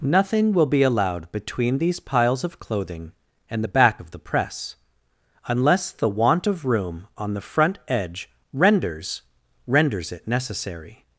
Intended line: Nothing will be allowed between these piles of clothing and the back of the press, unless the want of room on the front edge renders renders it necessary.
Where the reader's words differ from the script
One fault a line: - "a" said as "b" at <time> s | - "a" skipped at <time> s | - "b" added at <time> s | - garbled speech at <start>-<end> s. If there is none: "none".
none